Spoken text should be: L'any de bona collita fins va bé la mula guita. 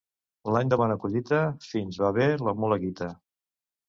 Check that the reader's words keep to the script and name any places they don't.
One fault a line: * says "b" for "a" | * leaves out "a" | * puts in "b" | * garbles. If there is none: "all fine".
all fine